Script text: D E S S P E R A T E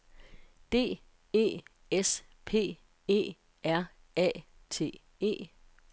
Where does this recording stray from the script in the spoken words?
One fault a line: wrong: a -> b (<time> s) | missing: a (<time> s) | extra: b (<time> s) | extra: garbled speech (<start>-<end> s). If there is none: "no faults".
missing: S (2.2 s)